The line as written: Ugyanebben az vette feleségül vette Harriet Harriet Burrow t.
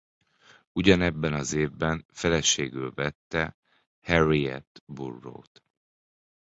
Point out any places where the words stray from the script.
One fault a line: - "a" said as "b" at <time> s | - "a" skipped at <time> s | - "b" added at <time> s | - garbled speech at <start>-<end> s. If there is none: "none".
- "vette" said as "évben" at 1.5 s
- "Harriet" skipped at 4.8 s